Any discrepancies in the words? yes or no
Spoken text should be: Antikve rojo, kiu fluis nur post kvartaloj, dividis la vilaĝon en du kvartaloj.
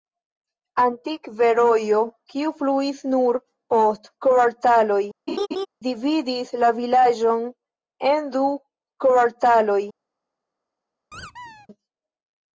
no